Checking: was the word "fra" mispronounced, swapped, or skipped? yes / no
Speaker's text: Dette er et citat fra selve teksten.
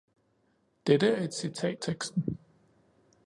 yes